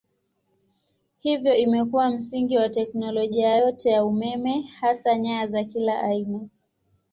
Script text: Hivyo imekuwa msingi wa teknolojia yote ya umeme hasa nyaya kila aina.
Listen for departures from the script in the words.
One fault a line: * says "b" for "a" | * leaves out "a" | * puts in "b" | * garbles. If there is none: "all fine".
* puts in "za"